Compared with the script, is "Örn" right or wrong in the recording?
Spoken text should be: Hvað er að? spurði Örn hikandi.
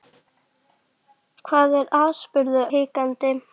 wrong